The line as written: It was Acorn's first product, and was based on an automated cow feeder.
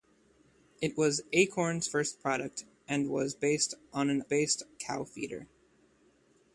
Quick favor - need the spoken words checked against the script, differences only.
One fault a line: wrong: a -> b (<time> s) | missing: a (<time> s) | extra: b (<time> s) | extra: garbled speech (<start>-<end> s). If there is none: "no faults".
wrong: automated -> based (4.2 s)